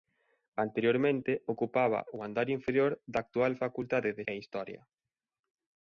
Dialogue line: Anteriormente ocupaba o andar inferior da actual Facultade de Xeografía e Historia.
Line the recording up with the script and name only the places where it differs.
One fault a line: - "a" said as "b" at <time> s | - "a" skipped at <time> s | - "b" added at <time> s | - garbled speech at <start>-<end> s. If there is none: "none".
- "Xeografía" skipped at 4.2 s